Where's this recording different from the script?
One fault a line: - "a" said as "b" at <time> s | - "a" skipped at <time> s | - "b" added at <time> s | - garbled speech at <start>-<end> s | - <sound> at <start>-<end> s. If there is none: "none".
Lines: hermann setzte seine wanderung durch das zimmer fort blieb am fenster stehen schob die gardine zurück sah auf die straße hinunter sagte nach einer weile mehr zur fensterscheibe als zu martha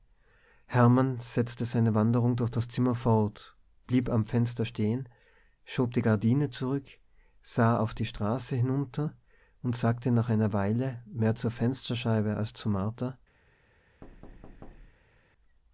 - "und" added at 9.6 s
- thud at 14.0-15.3 s